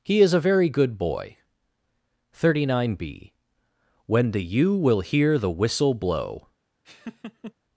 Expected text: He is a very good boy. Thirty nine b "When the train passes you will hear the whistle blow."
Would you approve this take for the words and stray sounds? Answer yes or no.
no